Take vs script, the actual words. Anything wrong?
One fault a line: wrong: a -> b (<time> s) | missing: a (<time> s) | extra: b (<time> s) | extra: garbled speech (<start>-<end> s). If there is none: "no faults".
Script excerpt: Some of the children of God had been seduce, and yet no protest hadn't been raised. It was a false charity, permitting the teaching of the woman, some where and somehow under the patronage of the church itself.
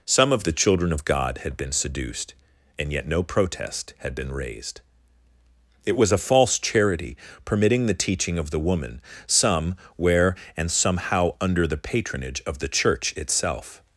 wrong: seduce -> seduced (1.7 s)
wrong: hadn't -> had (4.0 s)